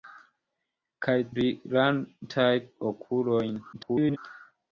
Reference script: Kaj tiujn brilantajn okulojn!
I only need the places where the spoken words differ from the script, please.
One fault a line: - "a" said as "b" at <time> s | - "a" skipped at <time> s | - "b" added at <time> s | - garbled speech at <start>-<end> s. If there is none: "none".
- "tiujn" skipped at 1.1 s
- garbled speech at 3.7-4.2 s